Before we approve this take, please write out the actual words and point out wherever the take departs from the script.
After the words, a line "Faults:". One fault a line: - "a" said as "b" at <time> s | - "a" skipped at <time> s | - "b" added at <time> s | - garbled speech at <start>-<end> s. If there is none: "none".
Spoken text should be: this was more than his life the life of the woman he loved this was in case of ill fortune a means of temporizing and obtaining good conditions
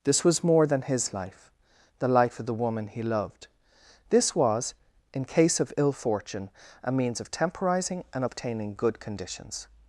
this was more than his life the life of the woman he loved this was in case of ill fortune a means of temporizing and obtaining good conditions
Faults:
none